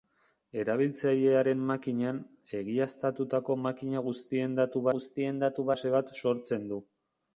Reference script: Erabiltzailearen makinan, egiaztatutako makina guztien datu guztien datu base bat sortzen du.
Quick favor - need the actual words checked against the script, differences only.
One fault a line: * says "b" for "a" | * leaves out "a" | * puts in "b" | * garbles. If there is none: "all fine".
all fine